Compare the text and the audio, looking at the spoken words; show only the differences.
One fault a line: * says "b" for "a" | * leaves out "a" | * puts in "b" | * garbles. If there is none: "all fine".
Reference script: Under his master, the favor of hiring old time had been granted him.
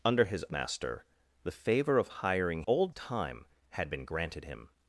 all fine